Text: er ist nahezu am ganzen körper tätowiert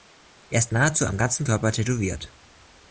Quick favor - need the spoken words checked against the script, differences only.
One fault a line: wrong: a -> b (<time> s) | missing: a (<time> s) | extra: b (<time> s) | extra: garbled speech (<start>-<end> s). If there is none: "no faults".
no faults